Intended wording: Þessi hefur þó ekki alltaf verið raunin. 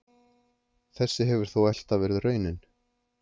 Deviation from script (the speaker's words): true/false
true